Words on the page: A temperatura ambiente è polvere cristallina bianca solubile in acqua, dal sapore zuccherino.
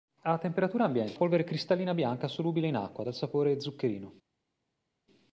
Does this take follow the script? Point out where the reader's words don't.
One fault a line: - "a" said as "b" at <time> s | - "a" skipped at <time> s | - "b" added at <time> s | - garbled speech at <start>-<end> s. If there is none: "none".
none